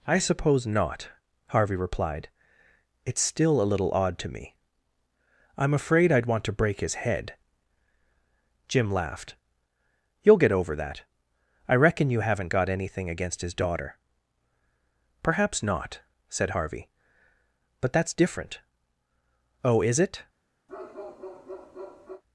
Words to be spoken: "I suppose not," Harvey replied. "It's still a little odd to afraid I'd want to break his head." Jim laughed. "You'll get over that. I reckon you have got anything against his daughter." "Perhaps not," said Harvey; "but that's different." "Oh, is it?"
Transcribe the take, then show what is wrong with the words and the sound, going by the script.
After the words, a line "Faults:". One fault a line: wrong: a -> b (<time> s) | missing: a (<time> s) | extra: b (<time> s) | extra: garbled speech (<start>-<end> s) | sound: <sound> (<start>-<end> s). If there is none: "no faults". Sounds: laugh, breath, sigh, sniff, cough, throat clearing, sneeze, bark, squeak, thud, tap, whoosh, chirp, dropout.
"I suppose not," Harvey replied. "It's still a little odd to me. I'm afraid I'd want to break his head." Jim laughed. "You'll get over that. I reckon you haven't got anything against his daughter." "Perhaps not," said Harvey; "but that's different." "Oh, is it?"
Faults:
extra: me I'm (4.3 s)
wrong: have -> haven't (12.2 s)
sound: bark (20.7-22.2 s)